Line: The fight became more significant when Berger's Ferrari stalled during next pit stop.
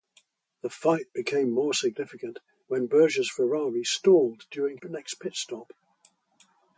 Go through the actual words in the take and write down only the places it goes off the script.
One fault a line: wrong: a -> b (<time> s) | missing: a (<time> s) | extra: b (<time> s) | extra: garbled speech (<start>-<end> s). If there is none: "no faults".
no faults